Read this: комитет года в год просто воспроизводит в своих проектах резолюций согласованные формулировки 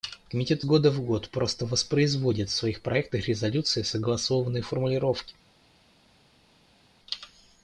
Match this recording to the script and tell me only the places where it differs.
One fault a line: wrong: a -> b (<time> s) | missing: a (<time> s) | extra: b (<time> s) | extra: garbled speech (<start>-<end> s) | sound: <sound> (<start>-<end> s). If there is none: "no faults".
no faults